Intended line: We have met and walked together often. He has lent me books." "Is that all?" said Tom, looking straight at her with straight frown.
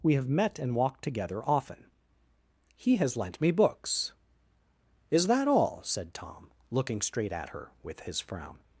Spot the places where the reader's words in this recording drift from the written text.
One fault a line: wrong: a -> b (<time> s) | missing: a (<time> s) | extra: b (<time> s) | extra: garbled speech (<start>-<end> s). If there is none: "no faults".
wrong: straight -> his (8.0 s)